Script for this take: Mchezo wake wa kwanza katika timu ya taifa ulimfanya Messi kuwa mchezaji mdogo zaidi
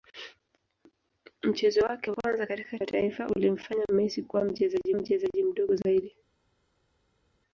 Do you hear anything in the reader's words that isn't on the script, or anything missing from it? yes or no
yes